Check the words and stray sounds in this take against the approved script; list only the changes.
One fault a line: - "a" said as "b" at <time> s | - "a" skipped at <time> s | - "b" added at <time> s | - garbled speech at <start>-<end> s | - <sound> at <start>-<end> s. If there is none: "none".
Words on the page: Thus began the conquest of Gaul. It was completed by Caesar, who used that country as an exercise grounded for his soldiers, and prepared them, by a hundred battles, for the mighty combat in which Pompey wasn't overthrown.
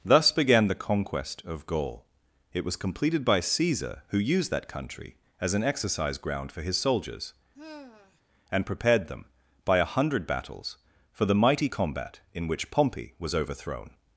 - "grounded" said as "ground" at 6.2 s
- sigh at 7.5-8.2 s
- "wasn't" said as "was" at 13.2 s